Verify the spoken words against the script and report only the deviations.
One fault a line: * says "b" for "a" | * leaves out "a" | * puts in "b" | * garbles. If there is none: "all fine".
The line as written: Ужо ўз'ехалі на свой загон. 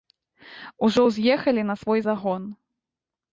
all fine